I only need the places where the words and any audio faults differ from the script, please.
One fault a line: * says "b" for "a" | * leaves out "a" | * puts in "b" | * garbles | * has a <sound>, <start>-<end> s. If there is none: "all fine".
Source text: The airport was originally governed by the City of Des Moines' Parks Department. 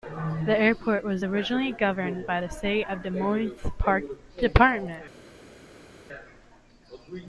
all fine